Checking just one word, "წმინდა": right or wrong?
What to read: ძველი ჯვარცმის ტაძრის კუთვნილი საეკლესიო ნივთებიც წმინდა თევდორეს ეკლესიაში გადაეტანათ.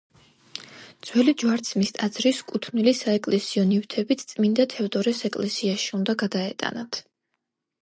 right